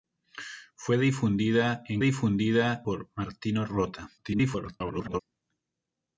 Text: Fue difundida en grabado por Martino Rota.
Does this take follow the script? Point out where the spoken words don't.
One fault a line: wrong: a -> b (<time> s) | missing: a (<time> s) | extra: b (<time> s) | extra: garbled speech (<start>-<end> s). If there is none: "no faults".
wrong: grabado -> difundida (2.0 s)
extra: garbled speech (4.2-5.2 s)